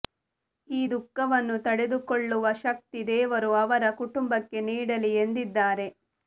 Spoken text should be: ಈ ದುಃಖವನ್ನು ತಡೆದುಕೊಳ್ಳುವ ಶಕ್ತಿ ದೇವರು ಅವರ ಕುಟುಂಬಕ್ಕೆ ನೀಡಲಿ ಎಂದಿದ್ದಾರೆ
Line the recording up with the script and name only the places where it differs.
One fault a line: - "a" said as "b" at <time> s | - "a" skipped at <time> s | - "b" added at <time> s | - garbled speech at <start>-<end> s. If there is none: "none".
none